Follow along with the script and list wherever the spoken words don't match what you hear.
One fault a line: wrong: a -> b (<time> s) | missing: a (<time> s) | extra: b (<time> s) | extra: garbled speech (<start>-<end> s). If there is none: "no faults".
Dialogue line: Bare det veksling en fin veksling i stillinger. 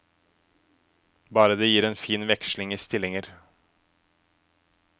wrong: veksling -> gir (1.7 s)